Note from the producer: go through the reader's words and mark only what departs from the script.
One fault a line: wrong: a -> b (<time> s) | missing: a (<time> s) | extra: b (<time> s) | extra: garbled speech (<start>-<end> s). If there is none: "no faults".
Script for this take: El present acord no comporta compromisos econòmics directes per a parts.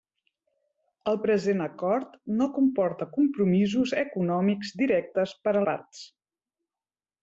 no faults